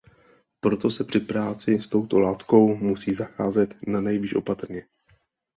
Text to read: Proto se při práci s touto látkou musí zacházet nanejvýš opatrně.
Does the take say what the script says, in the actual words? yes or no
yes